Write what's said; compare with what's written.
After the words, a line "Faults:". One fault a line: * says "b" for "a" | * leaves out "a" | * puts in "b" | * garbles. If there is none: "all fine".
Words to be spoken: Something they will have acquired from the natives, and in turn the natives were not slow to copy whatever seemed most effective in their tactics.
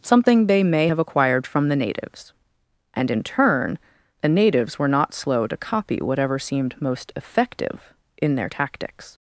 Something they may have acquired from the natives, and in turn the natives were not slow to copy whatever seemed most effective in their tactics.
Faults:
* says "may" for "will"